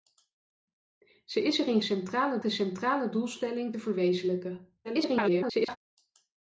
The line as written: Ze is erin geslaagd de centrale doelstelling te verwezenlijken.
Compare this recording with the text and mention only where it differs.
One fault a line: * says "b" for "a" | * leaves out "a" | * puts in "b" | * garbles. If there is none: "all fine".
* says "centrale" for "geslaagd"
* garbles